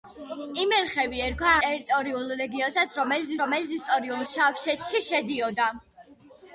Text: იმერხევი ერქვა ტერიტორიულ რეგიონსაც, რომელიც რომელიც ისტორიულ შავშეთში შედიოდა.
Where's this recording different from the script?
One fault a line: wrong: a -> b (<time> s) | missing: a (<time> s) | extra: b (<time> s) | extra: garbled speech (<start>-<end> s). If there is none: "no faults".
no faults